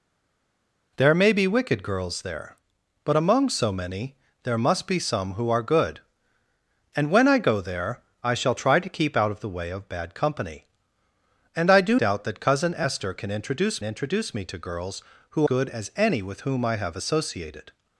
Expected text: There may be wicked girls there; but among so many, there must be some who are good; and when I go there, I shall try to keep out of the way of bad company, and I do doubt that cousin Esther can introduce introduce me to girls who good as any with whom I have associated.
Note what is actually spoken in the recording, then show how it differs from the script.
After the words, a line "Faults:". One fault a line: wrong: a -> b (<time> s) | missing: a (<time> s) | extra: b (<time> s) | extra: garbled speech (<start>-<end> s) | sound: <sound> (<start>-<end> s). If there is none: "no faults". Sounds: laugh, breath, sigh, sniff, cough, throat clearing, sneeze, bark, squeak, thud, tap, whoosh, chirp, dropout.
There may be wicked girls there; but among so many, there must be some who are good; and when I go there, I shall try to keep out of the way of bad company, and I do doubt that cousin Esther can introduce introduce me to girls who good as any with whom I have associated.
Faults:
no faults